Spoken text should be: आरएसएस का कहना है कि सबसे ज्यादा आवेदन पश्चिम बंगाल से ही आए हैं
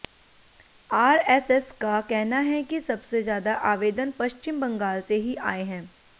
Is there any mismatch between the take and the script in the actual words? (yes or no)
no